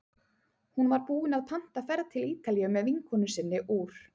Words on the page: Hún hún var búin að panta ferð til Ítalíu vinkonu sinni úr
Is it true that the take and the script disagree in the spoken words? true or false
true